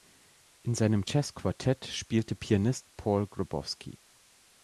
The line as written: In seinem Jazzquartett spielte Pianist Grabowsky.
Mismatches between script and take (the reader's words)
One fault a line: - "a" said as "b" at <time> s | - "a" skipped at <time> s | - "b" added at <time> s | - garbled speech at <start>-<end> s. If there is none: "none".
- "Paul" added at 3.0 s